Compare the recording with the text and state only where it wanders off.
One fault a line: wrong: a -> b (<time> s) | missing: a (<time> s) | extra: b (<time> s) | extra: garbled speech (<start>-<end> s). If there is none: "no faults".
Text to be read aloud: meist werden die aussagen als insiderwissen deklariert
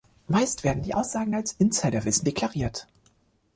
no faults